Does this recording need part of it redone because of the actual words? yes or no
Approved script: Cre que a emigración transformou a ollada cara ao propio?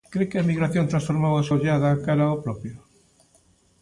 no